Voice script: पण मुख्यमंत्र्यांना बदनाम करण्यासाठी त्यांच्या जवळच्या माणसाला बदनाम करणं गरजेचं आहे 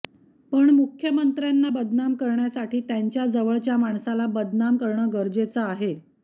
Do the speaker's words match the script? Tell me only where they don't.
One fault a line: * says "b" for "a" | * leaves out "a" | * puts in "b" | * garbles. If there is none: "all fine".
all fine